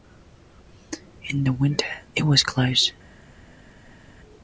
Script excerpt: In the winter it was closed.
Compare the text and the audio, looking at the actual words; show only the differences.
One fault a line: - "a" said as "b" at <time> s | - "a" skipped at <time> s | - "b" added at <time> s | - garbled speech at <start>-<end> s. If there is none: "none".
none